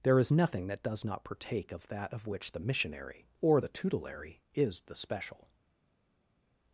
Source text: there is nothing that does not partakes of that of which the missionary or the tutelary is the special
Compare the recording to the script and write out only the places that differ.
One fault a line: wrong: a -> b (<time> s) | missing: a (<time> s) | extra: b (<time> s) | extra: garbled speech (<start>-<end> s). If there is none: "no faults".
wrong: partakes -> partake (1.3 s)